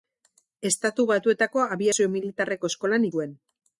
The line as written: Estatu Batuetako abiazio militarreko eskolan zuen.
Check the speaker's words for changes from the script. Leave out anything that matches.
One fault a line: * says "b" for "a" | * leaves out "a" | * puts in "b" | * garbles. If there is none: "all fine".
all fine